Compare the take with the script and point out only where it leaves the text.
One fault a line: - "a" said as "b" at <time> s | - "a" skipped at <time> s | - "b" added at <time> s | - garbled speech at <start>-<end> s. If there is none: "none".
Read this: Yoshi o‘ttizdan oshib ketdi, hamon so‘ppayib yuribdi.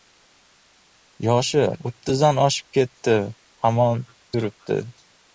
- "so‘ppayib" skipped at 4.0 s